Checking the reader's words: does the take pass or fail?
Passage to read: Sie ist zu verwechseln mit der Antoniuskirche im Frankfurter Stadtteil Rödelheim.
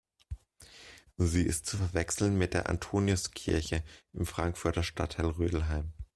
pass